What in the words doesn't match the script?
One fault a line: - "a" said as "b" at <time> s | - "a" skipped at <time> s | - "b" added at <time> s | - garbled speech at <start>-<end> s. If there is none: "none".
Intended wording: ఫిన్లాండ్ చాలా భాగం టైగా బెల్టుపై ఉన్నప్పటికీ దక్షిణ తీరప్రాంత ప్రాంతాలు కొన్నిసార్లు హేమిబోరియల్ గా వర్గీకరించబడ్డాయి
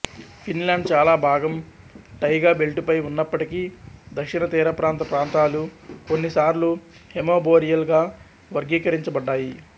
none